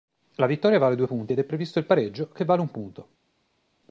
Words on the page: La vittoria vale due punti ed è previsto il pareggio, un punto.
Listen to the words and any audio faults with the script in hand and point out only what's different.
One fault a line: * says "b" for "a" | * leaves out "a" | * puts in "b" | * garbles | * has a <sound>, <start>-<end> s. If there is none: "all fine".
* puts in "che vale"